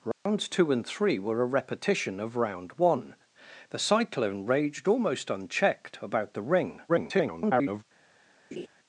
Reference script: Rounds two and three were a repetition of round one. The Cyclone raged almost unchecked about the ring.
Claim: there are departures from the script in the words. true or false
true